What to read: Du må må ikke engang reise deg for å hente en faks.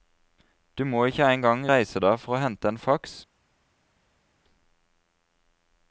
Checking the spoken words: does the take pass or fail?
fail